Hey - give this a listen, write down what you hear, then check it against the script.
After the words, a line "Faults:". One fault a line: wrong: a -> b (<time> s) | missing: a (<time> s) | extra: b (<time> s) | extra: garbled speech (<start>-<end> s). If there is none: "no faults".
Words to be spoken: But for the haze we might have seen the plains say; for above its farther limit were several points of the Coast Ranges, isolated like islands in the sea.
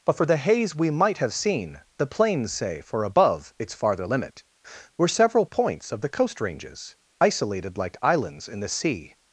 But for the haze we might have seen the plains say; for above its farther limit were several points of the Coast Ranges, isolated like islands in the sea.
Faults:
no faults